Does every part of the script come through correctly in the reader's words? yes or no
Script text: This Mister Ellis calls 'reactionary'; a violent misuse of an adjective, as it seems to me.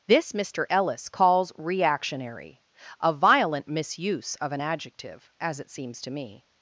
yes